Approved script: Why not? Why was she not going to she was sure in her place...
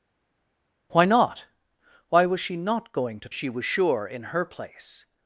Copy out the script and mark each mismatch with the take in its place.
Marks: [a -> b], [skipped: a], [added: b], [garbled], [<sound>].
Why not? Why was she not going to she was sure in her place...